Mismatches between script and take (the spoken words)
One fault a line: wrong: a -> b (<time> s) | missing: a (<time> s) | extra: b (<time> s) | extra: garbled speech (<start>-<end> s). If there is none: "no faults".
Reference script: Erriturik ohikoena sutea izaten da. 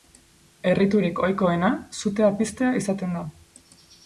extra: piztea (2.4 s)